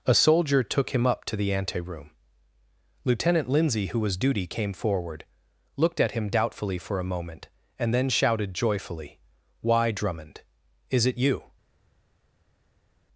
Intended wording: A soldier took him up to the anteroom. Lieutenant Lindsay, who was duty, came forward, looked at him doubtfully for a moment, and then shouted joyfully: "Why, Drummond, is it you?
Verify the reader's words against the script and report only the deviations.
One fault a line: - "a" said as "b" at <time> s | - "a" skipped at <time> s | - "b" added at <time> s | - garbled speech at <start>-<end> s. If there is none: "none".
none